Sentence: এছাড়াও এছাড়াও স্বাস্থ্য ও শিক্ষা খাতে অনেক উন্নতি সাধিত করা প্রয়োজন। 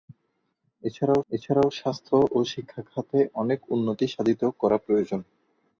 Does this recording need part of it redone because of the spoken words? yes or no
no